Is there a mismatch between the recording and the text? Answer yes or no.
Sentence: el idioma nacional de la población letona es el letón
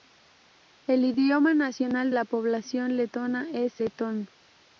yes